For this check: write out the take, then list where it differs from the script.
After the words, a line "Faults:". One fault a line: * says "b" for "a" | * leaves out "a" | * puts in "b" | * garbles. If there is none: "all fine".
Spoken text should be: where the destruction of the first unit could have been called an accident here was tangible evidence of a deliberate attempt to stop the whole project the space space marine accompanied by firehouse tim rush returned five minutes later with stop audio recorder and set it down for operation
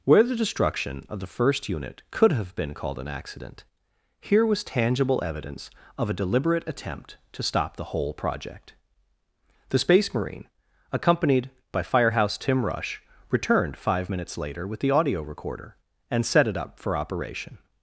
where the destruction of the first unit could have been called an accident here was tangible evidence of a deliberate attempt to stop the whole project the space marine accompanied by firehouse tim rush returned five minutes later with the audio recorder and set it up for operation
Faults:
* leaves out "space"
* says "the" for "stop"
* says "up" for "down"